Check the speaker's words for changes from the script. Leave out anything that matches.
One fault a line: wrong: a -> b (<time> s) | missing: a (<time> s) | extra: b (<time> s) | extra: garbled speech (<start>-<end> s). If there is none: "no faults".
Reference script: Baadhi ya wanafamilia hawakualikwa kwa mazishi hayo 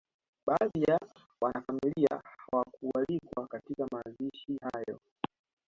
wrong: kwa -> katika (3.5 s)